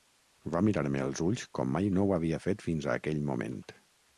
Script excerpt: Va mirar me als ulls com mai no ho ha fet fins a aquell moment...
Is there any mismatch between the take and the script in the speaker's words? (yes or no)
yes